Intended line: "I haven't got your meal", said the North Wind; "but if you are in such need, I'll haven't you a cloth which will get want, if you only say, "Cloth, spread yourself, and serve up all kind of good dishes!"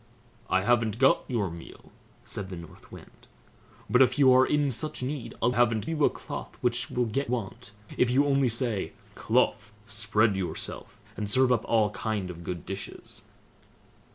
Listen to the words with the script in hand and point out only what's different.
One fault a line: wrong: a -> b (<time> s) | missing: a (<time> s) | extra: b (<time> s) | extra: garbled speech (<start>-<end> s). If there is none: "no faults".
no faults